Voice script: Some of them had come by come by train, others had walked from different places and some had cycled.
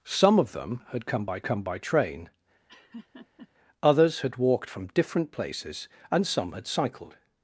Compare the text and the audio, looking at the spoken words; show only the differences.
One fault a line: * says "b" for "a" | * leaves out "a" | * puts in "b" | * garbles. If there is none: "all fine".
all fine